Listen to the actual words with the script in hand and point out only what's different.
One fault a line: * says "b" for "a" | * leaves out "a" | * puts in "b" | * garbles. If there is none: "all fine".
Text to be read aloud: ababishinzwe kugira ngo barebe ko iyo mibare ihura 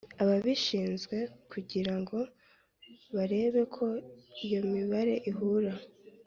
all fine